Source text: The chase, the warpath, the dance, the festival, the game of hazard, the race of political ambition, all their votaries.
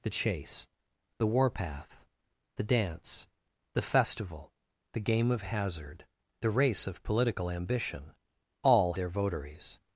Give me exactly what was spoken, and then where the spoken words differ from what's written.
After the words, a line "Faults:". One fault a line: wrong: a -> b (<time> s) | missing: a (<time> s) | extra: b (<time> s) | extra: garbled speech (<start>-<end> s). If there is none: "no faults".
The chase, the warpath, the dance, the festival, the game of hazard, the race of political ambition, all their votaries.
Faults:
no faults